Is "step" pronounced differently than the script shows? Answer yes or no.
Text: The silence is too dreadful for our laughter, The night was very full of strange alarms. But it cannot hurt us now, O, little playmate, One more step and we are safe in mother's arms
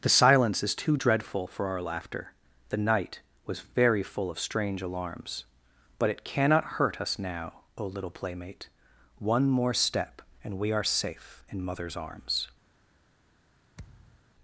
no